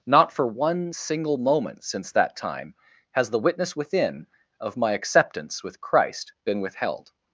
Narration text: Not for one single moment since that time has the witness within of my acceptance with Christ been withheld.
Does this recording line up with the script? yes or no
yes